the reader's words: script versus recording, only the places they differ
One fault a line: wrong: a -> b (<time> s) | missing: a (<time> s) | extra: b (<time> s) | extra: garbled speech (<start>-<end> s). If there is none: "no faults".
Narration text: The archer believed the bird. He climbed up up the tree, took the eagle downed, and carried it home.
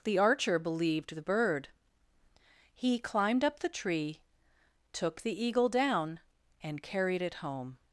missing: up (3.6 s)
wrong: downed -> down (5.7 s)